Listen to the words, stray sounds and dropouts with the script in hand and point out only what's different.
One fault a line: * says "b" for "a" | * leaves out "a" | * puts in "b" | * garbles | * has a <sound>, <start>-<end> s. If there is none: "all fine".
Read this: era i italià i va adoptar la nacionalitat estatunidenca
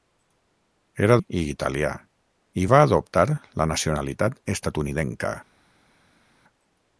all fine